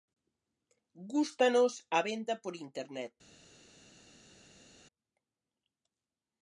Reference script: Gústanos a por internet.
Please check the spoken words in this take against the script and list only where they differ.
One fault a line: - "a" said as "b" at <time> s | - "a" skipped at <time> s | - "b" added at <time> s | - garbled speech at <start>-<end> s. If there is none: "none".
- "venda" added at 2.1 s